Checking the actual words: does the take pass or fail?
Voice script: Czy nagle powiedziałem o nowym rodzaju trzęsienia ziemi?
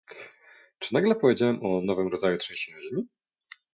pass